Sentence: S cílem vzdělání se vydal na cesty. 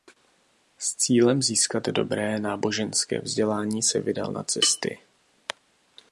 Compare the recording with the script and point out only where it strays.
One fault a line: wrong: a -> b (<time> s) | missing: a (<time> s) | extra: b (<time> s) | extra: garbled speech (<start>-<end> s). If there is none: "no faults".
extra: získat dobré náboženské (1.4 s)